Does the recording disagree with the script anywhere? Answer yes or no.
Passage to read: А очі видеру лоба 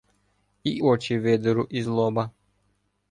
yes